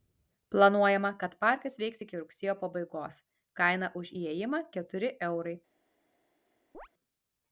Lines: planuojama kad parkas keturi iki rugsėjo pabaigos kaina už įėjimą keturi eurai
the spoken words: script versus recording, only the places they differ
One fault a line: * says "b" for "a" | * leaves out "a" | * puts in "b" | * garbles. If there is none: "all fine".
* says "veiks" for "keturi"